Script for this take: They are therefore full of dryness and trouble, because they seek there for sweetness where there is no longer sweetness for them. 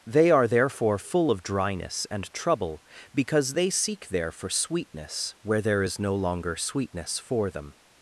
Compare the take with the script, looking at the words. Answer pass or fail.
pass